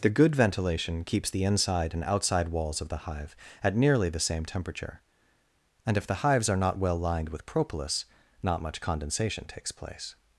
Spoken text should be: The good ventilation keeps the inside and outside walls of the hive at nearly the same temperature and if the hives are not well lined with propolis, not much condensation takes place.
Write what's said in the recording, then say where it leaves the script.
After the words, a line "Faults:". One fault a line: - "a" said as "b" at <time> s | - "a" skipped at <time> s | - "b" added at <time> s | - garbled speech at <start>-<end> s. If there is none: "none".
The good ventilation keeps the inside and outside walls of the hive at nearly the same temperature and if the hives are not well lined with propolis, not much condensation takes place.
Faults:
none